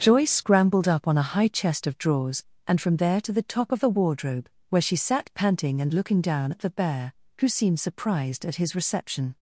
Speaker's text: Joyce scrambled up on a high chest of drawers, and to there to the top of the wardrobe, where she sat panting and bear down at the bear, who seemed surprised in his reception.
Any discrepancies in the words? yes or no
yes